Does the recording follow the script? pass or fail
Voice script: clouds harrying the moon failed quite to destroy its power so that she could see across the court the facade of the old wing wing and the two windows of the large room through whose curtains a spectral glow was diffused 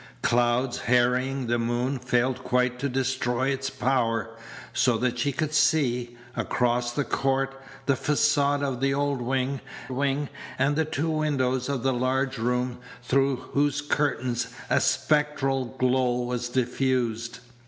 pass